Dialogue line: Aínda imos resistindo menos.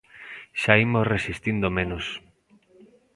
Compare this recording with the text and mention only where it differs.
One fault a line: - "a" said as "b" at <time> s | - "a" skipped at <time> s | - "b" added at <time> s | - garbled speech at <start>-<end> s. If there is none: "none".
- "Aínda" said as "Xa" at 0.6 s